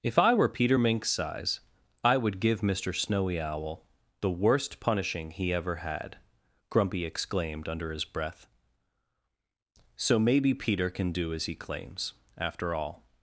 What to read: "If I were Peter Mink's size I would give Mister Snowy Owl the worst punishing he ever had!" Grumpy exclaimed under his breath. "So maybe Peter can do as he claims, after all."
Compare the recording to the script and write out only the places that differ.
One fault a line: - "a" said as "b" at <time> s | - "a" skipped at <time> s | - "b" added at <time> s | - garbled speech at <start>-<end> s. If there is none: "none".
none